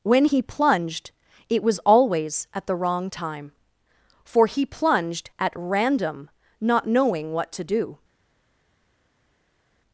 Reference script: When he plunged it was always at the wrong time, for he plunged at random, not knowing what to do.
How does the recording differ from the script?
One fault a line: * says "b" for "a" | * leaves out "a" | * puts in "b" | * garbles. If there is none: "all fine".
all fine